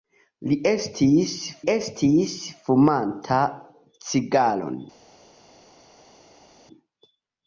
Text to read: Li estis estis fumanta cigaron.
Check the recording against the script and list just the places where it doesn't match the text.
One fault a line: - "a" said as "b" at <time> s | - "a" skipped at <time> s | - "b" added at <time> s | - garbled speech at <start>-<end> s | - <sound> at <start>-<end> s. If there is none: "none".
none